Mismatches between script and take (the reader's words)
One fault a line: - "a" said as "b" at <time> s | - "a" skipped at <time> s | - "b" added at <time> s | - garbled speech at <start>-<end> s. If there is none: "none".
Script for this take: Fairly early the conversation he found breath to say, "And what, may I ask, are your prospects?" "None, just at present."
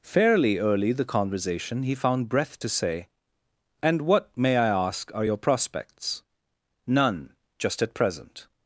none